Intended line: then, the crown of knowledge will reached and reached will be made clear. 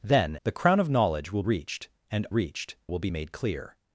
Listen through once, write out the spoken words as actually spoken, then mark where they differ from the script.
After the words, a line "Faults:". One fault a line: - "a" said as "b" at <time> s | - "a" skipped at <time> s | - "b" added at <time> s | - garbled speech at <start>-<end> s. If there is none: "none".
then, the crown of knowledge will reached and reached will be made clear.
Faults:
none